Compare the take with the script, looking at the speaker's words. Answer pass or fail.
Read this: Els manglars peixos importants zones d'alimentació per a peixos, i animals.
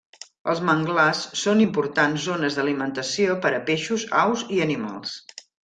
fail